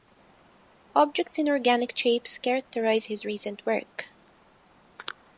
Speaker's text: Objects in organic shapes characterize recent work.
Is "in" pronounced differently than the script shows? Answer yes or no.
no